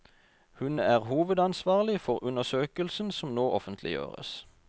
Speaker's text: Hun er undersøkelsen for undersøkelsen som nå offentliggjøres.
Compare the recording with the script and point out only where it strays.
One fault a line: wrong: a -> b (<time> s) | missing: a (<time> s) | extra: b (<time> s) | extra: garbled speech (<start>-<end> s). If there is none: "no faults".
wrong: undersøkelsen -> hovedansvarlig (1.0 s)